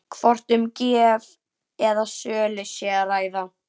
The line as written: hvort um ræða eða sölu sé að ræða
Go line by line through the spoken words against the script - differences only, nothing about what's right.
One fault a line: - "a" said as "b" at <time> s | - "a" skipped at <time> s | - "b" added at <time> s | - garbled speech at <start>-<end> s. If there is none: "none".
- "ræða" said as "gjöf" at 0.8 s